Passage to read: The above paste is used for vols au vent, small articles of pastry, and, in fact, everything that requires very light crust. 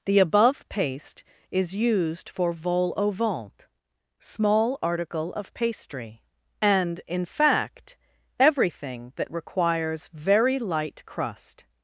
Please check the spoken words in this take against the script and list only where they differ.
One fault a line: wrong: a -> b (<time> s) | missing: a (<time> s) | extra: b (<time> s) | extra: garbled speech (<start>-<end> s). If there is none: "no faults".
wrong: vols -> vol (2.5 s)
wrong: articles -> article (4.8 s)